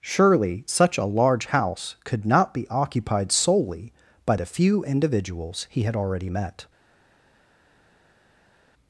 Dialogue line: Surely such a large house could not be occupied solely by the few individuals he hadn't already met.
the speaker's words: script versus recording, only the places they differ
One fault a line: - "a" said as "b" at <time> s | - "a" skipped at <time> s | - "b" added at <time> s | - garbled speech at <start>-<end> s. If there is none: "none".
- "hadn't" said as "had" at 5.8 s